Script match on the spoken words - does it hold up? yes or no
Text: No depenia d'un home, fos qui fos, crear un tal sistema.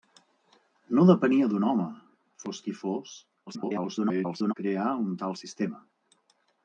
no